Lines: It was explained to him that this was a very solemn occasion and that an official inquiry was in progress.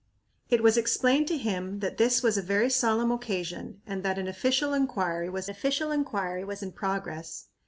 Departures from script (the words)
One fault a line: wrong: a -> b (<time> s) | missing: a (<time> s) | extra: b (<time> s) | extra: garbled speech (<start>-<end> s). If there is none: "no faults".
extra: official inquiry was (5.5 s)